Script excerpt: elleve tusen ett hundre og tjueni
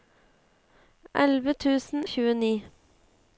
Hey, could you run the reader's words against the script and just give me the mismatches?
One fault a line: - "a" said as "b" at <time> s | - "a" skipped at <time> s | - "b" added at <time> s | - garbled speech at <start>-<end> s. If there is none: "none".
- "ett hundre" skipped at 2.0 s